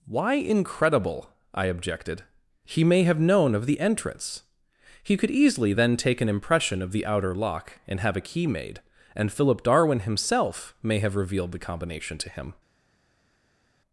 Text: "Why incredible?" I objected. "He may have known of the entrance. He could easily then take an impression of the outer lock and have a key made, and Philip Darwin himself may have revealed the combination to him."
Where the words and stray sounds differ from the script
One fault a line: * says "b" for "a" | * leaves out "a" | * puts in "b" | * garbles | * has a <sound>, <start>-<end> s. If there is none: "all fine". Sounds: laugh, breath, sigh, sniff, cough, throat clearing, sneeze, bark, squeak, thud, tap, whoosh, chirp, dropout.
all fine